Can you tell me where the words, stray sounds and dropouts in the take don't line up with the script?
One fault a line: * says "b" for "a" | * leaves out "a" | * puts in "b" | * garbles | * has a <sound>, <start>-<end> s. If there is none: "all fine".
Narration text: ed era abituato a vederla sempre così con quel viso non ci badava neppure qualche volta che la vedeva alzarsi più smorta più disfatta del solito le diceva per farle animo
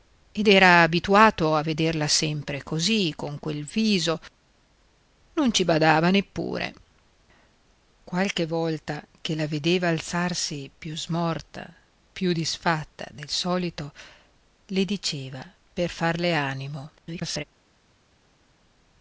* garbles